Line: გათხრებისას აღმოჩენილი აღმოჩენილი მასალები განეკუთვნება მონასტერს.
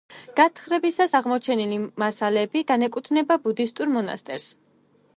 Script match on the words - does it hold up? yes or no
no